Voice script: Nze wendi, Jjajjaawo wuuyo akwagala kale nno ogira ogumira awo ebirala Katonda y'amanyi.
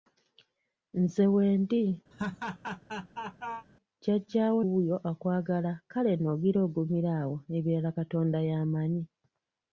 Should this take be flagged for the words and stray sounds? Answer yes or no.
yes